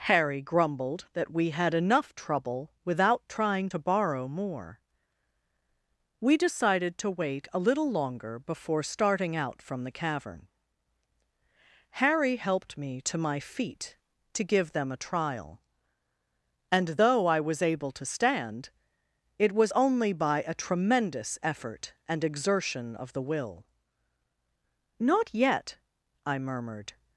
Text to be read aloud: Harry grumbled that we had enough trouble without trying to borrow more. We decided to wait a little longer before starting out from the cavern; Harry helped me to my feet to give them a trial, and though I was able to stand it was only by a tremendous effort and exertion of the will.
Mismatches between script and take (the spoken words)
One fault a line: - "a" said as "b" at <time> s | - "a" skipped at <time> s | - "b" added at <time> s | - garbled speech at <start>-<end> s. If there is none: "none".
- "Not yet I murmured" added at 25.0 s